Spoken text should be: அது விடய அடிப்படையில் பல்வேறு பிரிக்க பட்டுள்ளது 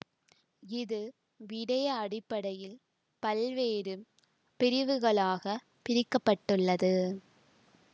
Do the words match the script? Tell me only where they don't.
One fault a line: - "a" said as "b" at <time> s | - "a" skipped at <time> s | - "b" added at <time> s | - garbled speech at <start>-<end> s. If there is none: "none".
- "அது" said as "இது" at 0.6 s
- "பிரிவுகளாக" added at 4.6 s